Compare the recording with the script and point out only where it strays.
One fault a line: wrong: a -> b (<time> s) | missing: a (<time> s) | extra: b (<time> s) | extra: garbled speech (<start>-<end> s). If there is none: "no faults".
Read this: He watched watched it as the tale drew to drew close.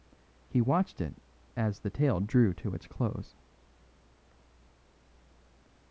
missing: watched (1.0 s)
wrong: drew -> its (2.7 s)